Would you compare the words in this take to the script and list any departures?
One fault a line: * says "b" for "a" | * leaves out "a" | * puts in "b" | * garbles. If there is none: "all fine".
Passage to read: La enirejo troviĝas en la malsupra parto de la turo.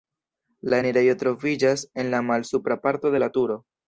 all fine